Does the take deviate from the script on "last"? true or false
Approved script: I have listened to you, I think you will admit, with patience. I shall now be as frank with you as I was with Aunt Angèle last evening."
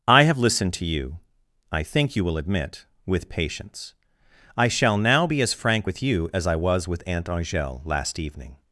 false